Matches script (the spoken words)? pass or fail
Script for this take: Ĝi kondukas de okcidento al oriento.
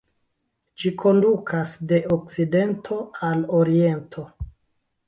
pass